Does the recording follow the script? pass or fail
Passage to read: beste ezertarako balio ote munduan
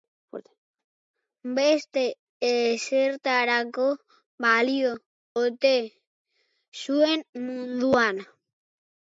fail